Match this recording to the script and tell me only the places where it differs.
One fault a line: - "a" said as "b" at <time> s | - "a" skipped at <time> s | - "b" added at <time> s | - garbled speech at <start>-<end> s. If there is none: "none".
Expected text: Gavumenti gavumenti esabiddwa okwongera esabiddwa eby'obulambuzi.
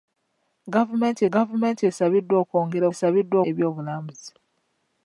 none